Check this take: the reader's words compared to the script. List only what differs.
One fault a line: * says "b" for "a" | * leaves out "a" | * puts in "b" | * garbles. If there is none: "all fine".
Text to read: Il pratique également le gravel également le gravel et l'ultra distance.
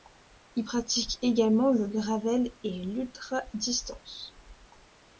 * leaves out "également le gravel"